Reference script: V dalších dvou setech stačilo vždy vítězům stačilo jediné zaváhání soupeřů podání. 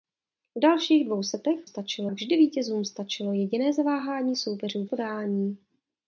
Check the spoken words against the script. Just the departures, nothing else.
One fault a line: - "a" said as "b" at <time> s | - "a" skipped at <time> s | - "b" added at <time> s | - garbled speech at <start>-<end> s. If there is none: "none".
none